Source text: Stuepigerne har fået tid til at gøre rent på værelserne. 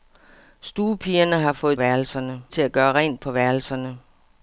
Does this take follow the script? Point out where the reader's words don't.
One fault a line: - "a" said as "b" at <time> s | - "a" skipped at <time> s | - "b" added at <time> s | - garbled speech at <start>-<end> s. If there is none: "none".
- "tid" said as "værelserne" at 1.7 s